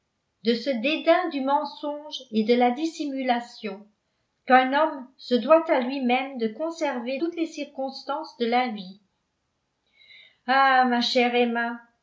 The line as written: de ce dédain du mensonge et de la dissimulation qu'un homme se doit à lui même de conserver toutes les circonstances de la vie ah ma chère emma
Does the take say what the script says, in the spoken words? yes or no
yes